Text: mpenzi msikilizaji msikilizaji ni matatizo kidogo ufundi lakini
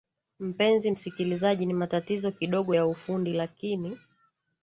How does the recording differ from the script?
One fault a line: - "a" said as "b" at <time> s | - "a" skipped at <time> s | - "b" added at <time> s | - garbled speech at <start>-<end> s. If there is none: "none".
- "msikilizaji" skipped at 1.7 s
- "ya" added at 2.7 s